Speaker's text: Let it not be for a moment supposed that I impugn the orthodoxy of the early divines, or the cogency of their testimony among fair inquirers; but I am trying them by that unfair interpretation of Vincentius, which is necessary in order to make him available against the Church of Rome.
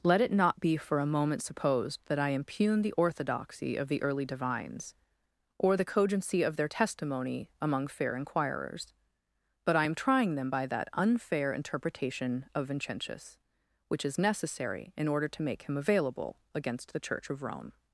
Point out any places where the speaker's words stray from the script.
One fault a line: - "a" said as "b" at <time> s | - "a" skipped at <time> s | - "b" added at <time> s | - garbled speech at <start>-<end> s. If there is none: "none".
none